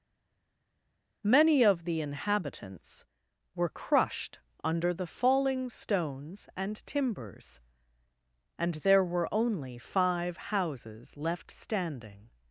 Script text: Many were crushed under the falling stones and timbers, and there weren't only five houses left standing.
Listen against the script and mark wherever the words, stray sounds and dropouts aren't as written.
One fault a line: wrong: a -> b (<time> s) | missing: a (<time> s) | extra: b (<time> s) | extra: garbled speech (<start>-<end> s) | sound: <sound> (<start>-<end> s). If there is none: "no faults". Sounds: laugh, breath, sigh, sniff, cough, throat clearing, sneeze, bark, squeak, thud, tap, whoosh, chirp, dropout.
extra: of the inhabitants (1.6 s)
wrong: weren't -> were (9.0 s)